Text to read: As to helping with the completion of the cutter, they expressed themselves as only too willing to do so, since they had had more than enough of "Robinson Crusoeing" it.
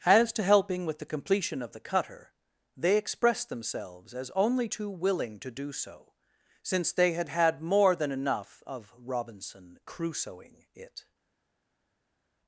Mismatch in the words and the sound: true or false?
false